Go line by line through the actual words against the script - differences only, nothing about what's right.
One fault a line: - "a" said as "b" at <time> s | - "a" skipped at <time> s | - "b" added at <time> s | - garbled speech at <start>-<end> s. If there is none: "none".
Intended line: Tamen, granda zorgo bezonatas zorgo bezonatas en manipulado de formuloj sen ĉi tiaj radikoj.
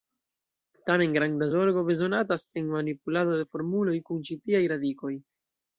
- "zorgo bezonatas" skipped at 2.5 s
- "sen" said as "kun" at 4.1 s